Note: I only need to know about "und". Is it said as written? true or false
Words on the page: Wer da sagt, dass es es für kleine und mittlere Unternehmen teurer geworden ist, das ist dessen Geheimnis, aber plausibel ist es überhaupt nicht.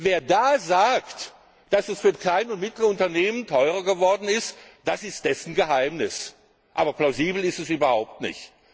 true